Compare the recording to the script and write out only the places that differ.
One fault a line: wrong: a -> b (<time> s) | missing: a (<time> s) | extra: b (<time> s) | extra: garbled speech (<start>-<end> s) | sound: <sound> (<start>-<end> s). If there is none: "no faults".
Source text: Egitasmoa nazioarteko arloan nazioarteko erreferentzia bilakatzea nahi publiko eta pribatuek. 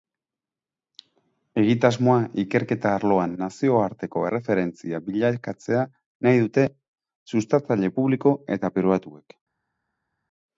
wrong: nazioarteko -> ikerketa (2.4 s)
extra: dute sustatzaile (6.4 s)